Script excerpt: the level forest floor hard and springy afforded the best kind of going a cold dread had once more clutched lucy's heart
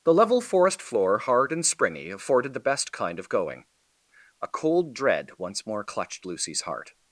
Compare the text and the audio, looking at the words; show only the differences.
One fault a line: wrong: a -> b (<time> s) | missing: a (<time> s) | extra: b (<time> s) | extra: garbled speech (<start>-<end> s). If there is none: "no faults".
missing: had (5.3 s)